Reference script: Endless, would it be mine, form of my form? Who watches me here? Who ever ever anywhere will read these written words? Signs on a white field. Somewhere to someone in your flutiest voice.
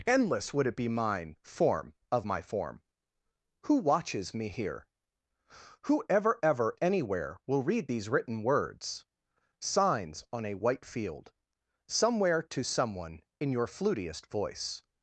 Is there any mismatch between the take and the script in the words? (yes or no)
no